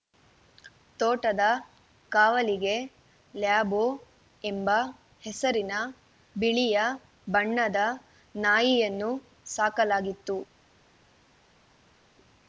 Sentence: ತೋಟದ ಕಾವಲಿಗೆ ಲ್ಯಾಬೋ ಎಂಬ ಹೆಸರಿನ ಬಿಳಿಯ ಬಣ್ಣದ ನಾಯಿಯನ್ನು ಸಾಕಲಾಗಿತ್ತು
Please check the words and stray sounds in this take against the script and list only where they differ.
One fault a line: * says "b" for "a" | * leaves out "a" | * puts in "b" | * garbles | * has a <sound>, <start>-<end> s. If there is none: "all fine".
all fine